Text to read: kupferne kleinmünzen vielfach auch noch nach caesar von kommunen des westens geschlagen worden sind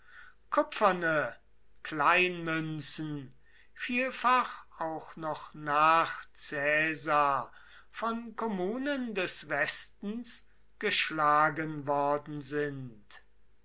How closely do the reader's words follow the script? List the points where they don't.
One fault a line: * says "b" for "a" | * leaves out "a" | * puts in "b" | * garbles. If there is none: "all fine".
all fine